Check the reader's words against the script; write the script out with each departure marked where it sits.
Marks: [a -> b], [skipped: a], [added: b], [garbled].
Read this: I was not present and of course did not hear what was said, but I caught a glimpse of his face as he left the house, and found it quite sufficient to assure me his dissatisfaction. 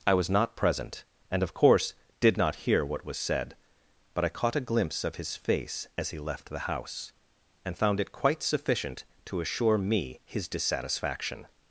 I was not present and of course did not hear what was said, but I caught a glimpse of his face as he left the house, and found it quite sufficient to assure me his dissatisfaction.